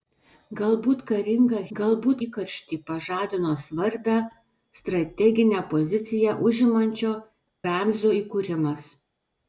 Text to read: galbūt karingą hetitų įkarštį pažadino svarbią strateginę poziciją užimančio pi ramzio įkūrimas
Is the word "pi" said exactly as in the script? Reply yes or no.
no